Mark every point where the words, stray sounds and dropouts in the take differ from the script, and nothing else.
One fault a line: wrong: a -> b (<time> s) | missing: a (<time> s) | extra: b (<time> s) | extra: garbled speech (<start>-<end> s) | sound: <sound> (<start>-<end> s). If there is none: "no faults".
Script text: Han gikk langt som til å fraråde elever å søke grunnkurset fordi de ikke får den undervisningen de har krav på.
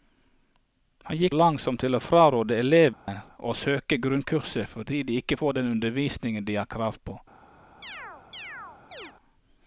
sound: dropout (2.9-3.1 s)
sound: chirp (7.8-9.1 s)